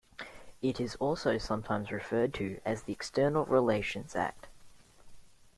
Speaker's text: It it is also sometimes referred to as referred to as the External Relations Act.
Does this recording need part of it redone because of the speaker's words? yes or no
yes